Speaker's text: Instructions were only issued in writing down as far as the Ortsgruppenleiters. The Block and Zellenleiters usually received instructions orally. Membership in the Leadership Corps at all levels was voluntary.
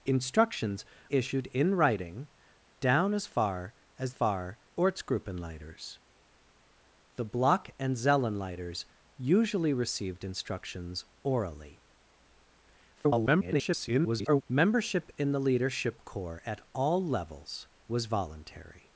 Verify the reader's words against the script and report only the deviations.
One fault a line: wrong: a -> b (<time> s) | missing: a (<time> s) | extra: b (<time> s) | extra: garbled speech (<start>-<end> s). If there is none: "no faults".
missing: were only (0.8 s)
wrong: the -> far (4.1 s)
extra: garbled speech (13.0-14.4 s)